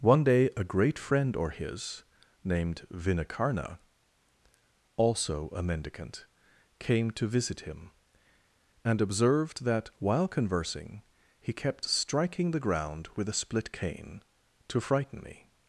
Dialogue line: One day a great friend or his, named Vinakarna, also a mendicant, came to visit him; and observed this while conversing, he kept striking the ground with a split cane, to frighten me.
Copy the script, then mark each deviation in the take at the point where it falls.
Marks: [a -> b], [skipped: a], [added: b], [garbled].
One day a great friend or his, named Vinakarna, also a mendicant, came to visit him; and observed [this -> that] while conversing, he kept striking the ground with a split cane, to frighten me.